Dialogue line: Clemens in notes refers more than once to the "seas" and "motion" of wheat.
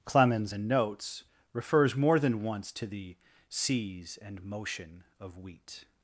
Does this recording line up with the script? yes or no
yes